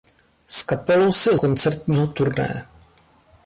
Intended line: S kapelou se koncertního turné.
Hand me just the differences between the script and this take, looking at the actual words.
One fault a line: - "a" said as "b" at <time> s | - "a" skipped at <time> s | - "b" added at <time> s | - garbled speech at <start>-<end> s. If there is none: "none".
none